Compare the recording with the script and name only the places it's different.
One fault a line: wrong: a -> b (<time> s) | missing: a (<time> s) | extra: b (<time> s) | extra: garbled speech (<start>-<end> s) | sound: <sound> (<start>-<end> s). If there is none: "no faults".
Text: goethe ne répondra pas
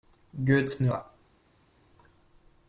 missing: répondra (0.9 s)